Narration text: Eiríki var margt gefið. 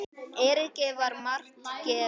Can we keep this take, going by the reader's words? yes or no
yes